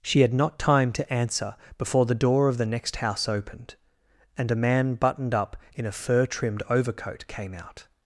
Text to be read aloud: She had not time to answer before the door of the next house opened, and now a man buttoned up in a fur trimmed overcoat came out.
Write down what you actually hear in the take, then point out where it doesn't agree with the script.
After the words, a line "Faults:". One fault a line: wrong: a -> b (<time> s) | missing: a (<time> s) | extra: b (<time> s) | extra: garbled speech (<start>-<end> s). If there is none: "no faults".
She had not time to answer before the door of the next house opened, and a man buttoned up in a fur trimmed overcoat came out.
Faults:
missing: now (4.5 s)